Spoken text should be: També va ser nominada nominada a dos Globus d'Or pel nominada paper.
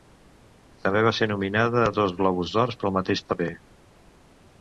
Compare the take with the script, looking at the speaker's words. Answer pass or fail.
fail